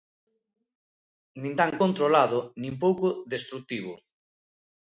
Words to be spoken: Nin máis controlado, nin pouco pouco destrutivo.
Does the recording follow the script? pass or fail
fail